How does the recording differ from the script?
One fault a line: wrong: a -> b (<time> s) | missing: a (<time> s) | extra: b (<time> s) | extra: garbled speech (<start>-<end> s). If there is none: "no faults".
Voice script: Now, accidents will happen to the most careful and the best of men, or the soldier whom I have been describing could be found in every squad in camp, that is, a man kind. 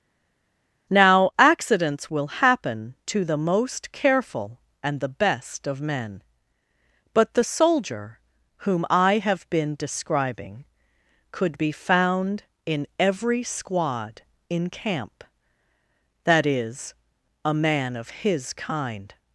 wrong: or -> but (7.1 s)
extra: of his (18.0 s)